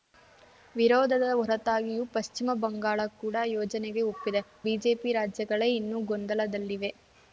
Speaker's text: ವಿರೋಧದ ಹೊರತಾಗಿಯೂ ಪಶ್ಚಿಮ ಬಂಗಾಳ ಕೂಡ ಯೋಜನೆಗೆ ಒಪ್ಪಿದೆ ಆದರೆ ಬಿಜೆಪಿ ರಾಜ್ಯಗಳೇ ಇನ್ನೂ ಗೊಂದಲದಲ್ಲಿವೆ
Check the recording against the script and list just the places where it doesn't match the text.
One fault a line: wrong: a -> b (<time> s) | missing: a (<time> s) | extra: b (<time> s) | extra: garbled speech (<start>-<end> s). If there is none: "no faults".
missing: ಆದರೆ (4.4 s)